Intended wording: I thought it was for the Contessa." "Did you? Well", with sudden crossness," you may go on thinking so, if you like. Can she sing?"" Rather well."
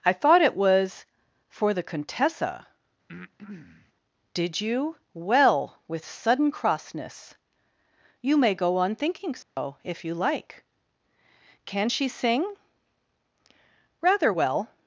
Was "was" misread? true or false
false